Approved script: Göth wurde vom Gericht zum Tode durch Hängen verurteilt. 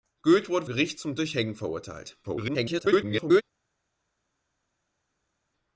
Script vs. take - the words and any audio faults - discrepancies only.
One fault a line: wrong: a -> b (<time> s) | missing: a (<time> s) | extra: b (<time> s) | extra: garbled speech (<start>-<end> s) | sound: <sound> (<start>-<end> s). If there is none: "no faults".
missing: vom (0.7 s)
missing: Tode (1.2 s)
extra: garbled speech (2.2-3.4 s)